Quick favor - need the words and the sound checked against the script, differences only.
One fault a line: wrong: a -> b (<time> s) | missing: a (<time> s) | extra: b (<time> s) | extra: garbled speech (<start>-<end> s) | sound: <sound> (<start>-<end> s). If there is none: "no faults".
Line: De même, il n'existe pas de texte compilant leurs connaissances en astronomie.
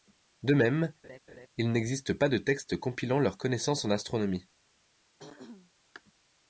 sound: laugh (1.0-1.5 s)
sound: throat clearing (5.2-5.7 s)